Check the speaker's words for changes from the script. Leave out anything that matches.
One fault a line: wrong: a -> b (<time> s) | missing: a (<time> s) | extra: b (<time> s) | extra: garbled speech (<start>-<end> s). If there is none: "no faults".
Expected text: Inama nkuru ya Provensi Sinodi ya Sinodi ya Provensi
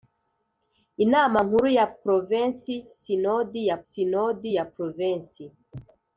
no faults